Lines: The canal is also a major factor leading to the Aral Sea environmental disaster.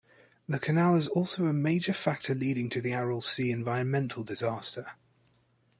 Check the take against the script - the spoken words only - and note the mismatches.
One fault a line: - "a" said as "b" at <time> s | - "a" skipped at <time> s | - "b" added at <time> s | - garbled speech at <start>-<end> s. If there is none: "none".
none